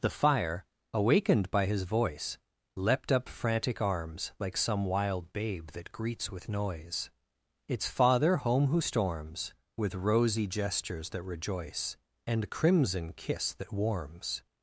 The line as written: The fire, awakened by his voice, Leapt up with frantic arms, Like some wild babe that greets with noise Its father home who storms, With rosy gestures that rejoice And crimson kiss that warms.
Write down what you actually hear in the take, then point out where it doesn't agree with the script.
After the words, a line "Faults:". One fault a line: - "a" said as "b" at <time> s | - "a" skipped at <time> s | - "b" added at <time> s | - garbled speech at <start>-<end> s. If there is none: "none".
The fire, awakened by his voice, Leapt up frantic arms, Like some wild babe that greets with noise Its father home who storms, With rosy gestures that rejoice And crimson kiss that warms.
Faults:
- "with" skipped at 3.3 s